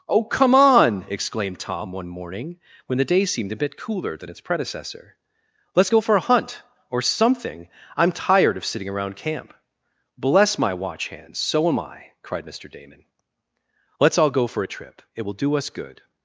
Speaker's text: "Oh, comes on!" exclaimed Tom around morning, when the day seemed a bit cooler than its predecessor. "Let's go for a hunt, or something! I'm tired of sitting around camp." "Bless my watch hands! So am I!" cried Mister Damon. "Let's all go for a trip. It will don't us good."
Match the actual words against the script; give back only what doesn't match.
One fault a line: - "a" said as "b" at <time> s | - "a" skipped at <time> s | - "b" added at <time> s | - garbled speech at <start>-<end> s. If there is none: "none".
- "comes" said as "come" at 0.2 s
- "around" said as "one" at 1.9 s
- "don't" said as "do" at 15.3 s